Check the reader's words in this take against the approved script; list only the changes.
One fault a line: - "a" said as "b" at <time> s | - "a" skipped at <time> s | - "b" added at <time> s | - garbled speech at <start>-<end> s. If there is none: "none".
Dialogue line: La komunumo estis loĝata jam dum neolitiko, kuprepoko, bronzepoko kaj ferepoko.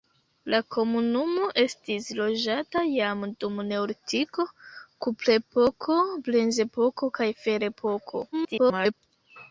- garbled speech at 8.3-8.9 s